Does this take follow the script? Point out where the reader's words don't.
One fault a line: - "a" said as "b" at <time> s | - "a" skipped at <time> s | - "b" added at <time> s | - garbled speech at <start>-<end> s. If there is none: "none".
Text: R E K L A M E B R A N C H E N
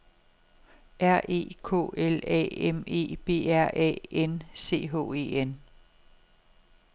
none